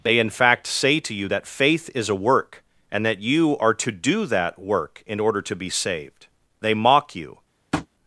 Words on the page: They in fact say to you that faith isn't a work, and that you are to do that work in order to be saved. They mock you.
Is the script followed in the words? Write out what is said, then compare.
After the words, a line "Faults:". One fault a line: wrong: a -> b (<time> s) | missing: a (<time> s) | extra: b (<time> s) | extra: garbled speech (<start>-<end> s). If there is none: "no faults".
They in fact say to you that faith is a work, and that you are to do that work in order to be saved. They mock you.
Faults:
wrong: isn't -> is (1.9 s)